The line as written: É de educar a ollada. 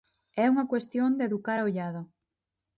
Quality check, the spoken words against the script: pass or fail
fail